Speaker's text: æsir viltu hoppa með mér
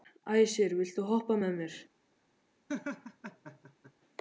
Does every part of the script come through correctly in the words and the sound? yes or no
no